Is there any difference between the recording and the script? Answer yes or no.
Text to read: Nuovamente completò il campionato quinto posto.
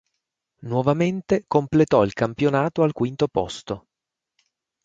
yes